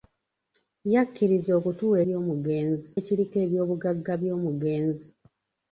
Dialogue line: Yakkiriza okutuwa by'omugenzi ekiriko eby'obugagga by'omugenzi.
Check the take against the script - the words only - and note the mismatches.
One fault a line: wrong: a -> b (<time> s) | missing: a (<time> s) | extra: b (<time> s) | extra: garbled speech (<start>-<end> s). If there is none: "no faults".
no faults